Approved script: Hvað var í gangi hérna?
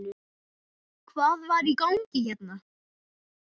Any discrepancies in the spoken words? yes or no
no